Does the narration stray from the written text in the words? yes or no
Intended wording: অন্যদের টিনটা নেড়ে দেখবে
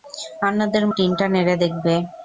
no